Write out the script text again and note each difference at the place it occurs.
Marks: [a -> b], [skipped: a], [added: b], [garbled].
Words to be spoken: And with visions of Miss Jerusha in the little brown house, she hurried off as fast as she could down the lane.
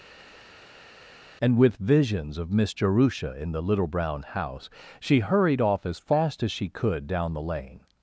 And with visions of Miss Jerusha in the little brown house, she hurried off as fast as she could down the lane.